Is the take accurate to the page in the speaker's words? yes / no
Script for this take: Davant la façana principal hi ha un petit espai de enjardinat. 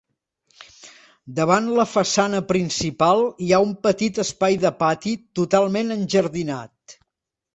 no